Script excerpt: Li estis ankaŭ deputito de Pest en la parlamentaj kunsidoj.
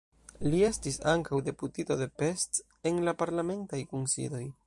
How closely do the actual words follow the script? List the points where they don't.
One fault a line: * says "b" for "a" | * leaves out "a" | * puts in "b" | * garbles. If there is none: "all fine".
all fine